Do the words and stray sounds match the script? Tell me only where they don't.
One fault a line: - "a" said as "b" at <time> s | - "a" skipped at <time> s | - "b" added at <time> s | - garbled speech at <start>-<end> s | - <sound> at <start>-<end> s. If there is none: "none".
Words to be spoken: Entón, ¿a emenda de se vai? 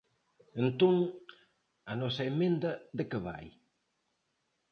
- "nosa" added at 2.0 s
- "se" said as "que" at 3.1 s